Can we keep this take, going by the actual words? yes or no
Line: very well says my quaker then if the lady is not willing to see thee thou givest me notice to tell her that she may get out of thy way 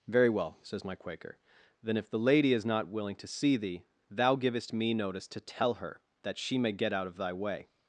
yes